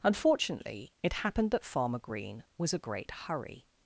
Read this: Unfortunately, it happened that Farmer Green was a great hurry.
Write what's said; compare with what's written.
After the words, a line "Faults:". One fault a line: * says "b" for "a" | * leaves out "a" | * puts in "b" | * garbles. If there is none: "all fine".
Unfortunately, it happened that Farmer Green was a great hurry.
Faults:
all fine